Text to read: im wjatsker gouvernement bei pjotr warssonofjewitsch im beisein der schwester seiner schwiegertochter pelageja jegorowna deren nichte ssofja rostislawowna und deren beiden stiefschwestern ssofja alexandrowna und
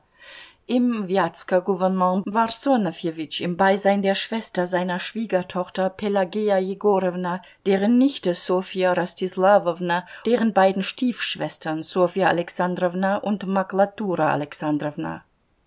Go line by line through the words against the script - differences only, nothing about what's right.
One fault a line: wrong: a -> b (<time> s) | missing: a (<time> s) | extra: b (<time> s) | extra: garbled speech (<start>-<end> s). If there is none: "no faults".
missing: bei pjotr (2.2 s)
missing: und (10.0 s)